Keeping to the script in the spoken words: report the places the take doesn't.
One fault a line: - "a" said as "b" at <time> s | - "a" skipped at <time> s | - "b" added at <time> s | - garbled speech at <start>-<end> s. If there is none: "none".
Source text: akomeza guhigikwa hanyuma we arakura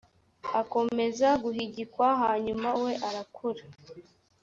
none